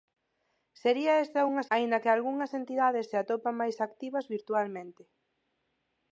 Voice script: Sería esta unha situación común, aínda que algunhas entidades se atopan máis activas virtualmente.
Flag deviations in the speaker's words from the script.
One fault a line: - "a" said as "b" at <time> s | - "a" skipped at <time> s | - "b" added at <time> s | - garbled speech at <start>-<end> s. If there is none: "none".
- "situación común" skipped at 1.6 s